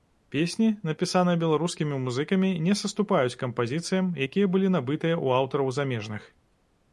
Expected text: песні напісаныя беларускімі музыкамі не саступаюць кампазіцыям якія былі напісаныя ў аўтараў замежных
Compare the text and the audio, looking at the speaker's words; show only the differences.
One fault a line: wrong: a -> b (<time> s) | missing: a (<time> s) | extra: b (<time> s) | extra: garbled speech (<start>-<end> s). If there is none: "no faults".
wrong: напісаныя -> набытыя (4.8 s)